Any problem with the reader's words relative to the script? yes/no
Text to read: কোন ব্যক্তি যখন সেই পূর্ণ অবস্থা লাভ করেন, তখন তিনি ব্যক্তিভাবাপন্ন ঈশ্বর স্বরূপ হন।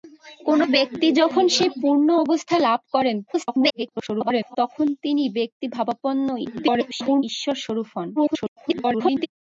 yes